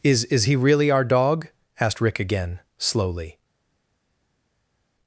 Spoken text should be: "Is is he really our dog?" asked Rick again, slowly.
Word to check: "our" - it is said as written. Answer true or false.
true